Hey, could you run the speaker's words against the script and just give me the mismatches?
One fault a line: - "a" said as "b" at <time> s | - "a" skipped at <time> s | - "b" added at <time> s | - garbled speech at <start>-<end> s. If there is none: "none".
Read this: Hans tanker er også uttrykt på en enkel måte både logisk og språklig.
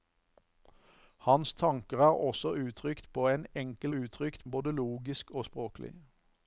- "måte" said as "uttrykt" at 4.0 s